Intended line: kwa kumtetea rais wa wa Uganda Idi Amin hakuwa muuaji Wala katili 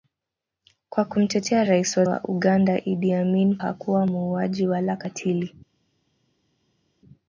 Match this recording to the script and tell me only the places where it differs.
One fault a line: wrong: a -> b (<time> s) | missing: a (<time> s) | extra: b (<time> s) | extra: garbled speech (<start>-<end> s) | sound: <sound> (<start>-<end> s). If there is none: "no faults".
no faults